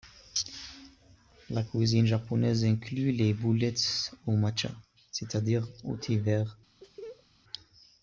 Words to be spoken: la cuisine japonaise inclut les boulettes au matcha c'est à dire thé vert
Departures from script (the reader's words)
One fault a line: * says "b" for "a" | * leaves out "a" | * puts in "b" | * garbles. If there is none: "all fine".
* puts in "au"